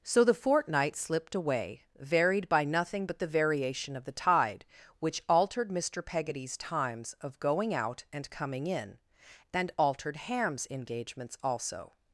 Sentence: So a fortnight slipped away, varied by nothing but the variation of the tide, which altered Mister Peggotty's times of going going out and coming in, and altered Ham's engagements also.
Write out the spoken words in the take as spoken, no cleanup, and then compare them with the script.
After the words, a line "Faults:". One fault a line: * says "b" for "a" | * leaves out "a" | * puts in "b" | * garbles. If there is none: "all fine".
So the fortnight slipped away, varied by nothing but the variation of the tide, which altered Mister Peggotty's times of going out and coming in, and altered Ham's engagements also.
Faults:
* says "the" for "a"
* leaves out "going"